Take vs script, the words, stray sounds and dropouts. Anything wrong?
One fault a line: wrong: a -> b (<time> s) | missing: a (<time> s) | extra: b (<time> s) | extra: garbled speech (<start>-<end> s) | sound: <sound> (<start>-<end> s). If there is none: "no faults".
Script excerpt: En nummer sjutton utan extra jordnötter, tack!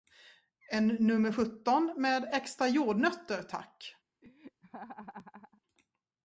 wrong: utan -> med (2.0 s)
sound: laugh (4.2-5.6 s)